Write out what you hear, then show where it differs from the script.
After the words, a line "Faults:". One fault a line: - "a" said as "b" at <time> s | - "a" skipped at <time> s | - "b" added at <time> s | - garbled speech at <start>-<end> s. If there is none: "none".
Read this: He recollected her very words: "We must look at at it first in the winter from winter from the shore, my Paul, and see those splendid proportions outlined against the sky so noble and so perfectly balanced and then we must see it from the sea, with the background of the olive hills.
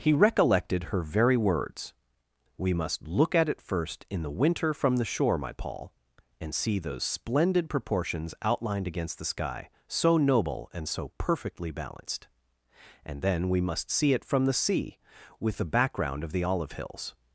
He recollected her very words: "We must look at it first in the winter from the shore, my Paul, and see those splendid proportions outlined against the sky so noble and so perfectly balanced and then we must see it from the sea, with the background of the olive hills.
Faults:
- "at" skipped at 3.5 s
- "winter from" skipped at 5.0 s